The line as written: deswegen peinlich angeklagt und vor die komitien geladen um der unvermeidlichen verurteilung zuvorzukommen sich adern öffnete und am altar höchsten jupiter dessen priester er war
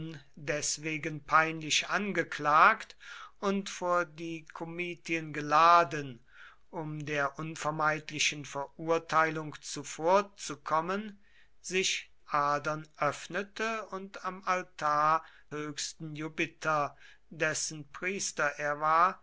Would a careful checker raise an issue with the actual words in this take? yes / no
no